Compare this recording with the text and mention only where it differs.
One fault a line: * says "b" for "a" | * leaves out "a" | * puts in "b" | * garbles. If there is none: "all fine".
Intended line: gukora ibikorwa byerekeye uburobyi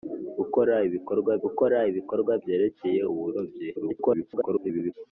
* puts in "gukora ibikorwa"
* garbles